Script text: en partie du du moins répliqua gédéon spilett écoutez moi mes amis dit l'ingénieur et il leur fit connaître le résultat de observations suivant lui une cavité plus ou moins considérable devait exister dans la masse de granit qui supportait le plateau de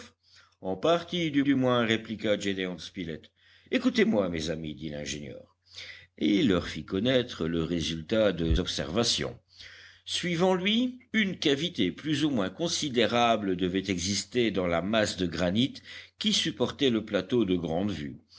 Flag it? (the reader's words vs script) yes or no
no